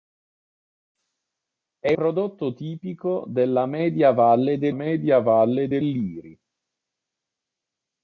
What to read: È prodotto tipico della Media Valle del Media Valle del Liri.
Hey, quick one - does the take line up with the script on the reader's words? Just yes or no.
yes